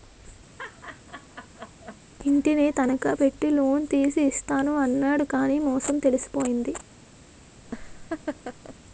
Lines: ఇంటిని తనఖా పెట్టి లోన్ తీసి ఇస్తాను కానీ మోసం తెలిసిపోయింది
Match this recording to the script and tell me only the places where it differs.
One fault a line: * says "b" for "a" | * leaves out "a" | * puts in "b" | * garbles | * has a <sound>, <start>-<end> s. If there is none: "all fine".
* has a laugh, 0.6-2.0 s
* puts in "అన్నాడు"
* has a laugh, 7.7-8.8 s